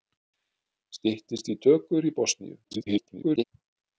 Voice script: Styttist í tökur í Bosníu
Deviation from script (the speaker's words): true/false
true